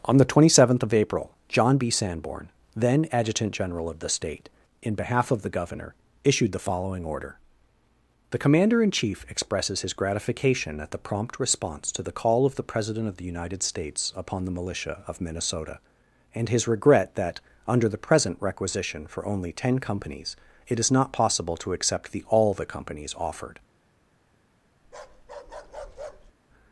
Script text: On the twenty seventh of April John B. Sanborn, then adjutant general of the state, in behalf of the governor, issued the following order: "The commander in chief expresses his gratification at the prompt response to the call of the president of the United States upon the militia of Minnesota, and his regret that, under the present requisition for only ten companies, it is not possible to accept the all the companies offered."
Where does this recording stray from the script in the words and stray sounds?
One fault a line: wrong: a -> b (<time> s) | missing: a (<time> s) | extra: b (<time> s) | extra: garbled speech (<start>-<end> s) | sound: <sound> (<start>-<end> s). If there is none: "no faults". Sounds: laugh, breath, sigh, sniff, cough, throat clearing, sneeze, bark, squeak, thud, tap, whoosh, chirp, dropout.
sound: bark (24.8-26.3 s)